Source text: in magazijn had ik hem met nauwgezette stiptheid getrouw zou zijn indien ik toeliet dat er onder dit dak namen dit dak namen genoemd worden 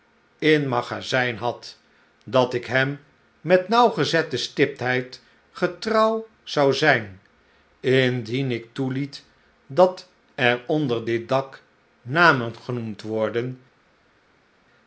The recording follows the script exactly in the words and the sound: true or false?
false